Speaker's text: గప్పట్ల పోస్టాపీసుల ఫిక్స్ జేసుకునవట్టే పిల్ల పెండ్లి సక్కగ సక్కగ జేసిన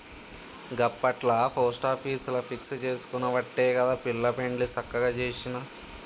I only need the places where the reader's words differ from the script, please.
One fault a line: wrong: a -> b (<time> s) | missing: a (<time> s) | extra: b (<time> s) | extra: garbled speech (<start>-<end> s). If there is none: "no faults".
extra: గదా (3.7 s)
missing: సక్కగ (5.0 s)